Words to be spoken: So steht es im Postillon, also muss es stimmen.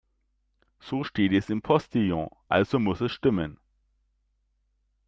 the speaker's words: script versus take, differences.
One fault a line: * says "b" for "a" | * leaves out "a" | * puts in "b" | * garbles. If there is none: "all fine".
all fine